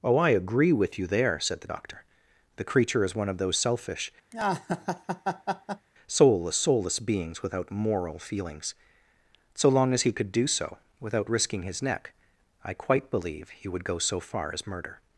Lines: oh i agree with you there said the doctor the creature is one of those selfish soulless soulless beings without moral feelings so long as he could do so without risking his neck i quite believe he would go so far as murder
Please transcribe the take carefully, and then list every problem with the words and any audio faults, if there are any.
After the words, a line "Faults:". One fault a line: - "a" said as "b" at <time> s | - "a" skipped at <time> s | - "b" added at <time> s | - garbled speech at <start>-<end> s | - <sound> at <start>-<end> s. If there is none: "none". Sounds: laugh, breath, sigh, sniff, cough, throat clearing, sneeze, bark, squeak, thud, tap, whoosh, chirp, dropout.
oh i agree with you there said the doctor the creature is one of those selfish soulless soulless beings without moral feelings so long as he could do so without risking his neck i quite believe he would go so far as murder
Faults:
- laugh at 4.3-5.9 s